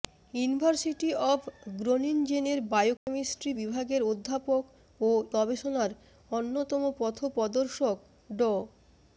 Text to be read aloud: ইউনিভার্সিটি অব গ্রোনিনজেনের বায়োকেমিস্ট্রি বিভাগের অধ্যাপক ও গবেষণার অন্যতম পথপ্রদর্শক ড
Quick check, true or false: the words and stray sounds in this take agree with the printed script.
false